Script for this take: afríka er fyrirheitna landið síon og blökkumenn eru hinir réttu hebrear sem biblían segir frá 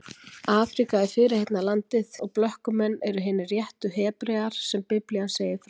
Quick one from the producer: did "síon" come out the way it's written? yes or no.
no